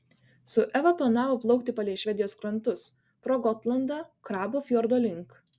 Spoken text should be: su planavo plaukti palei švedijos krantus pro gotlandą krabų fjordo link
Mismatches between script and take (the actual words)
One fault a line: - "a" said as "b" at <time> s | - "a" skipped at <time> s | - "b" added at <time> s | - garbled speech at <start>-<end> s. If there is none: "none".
- "eva" added at 0.8 s